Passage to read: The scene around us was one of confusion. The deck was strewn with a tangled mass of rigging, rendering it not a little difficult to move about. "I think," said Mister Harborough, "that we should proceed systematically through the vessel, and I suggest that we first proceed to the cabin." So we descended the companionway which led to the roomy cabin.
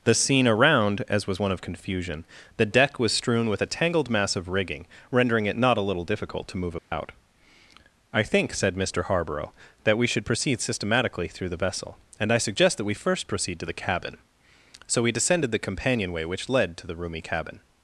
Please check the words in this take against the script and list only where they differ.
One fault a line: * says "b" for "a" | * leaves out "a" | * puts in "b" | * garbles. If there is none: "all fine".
* says "as" for "us"